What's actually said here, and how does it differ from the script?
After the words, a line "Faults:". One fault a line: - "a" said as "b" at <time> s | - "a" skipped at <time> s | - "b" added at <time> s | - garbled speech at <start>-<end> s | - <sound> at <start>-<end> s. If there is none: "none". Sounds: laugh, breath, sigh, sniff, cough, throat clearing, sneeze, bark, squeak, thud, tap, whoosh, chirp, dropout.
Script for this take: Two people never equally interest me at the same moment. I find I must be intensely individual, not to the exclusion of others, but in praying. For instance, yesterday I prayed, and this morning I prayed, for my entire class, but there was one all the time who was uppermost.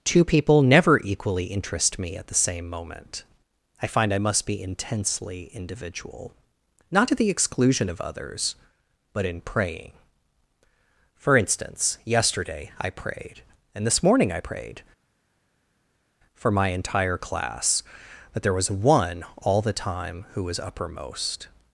Two people never equally interest me at the same moment. I find I must be intensely individual, not to the exclusion of others, but in praying. For instance, yesterday I prayed, and this morning I prayed, for my entire class, that there was one all the time who was uppermost.
Faults:
- "but" said as "that" at 18.3 s